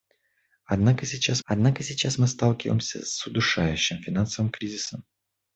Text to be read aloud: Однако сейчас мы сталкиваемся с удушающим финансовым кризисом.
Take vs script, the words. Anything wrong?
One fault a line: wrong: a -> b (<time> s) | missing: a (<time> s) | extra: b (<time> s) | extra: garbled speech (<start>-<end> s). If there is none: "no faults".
extra: однако сейчас (1.4 s)